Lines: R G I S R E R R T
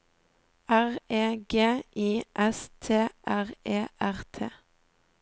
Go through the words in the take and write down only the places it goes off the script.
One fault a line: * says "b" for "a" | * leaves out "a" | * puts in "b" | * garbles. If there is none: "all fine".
* puts in "E"
* puts in "T"
* leaves out "R"